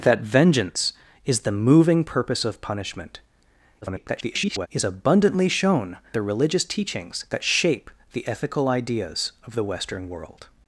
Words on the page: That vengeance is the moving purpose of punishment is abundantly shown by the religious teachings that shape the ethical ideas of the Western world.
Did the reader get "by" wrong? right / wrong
wrong